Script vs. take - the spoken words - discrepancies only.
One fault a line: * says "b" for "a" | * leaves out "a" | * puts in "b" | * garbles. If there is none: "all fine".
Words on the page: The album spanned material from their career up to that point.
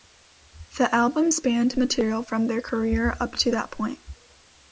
all fine